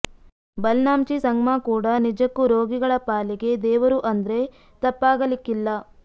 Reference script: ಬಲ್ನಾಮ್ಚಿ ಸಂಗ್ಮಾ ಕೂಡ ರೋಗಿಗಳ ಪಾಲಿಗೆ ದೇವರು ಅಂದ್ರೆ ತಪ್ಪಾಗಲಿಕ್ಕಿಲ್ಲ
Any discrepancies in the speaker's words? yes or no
yes